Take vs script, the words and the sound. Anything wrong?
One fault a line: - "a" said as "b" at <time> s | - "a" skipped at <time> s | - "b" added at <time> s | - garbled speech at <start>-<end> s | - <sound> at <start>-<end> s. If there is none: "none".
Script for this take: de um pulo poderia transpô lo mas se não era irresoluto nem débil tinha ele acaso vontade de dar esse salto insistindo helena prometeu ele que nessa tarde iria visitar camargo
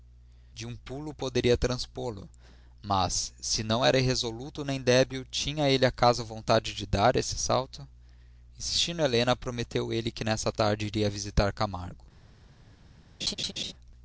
- laugh at 13.2-13.7 s